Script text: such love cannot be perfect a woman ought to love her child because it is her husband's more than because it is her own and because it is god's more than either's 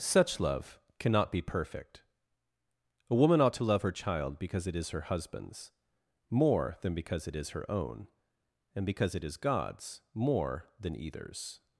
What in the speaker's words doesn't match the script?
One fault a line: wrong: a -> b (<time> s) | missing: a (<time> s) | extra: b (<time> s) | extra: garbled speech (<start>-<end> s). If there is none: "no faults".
no faults